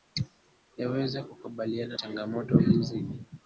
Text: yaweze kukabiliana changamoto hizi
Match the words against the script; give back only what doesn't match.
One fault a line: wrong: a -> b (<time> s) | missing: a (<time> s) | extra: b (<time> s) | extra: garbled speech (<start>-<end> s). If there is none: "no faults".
no faults